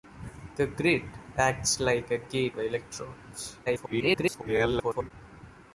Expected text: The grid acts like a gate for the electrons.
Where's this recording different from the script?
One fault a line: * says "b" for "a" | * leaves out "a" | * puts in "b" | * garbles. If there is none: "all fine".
* leaves out "for"
* garbles